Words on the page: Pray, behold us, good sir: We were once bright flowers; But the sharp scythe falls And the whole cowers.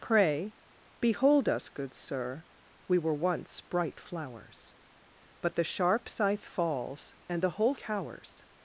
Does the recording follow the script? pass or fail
pass